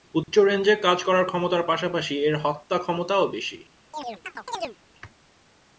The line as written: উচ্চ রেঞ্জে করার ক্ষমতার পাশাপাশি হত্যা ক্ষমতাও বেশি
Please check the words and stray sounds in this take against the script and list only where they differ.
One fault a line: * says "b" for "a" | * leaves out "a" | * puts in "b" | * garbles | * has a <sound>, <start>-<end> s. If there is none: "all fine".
* has a dropout, 0.2-0.3 s
* puts in "কাজ"
* puts in "এর"
* has a chirp, 3.9-4.8 s